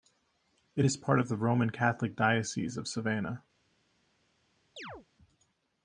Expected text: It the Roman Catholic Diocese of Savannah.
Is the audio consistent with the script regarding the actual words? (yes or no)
no